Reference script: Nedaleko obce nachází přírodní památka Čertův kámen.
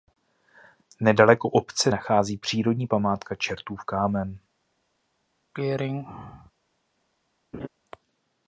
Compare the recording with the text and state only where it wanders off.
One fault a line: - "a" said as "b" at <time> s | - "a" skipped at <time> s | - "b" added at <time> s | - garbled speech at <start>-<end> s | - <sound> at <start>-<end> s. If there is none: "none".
- throat clearing at 5.5-6.5 s
- laugh at 7.5-7.7 s